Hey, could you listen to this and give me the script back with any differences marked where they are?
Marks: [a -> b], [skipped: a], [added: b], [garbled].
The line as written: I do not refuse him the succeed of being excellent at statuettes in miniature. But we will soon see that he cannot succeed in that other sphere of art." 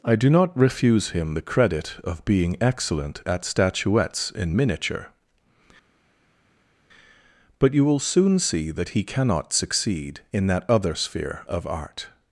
I do not refuse him the [succeed -> credit] of being excellent at statuettes in miniature. But [we -> you] will soon see that he cannot succeed in that other sphere of art."